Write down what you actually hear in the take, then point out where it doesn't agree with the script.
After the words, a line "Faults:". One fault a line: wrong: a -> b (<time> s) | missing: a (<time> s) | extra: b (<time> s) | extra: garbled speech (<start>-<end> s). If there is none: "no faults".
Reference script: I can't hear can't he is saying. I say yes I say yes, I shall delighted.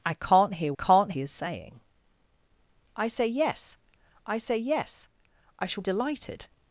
I can't hear can't he is saying. I say yes I say yes, I shall delighted.
Faults:
no faults